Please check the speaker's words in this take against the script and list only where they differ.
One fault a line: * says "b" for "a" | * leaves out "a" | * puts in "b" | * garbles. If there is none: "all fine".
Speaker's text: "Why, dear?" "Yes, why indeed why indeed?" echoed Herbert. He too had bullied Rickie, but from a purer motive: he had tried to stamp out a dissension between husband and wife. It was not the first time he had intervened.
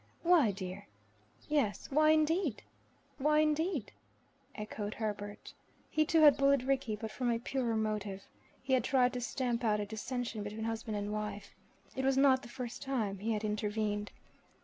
all fine